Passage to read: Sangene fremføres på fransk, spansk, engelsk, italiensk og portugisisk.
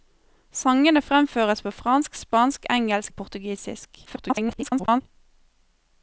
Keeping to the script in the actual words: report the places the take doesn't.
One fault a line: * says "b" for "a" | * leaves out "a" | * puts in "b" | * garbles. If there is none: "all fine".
* leaves out "italiensk"
* garbles